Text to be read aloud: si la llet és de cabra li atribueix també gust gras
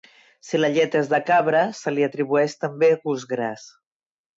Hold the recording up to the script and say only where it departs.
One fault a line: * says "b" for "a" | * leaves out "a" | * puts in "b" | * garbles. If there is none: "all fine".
* puts in "se"